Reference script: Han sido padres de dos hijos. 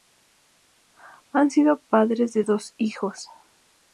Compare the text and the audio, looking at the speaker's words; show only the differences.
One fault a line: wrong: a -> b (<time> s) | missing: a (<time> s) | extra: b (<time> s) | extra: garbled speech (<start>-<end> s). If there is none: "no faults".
no faults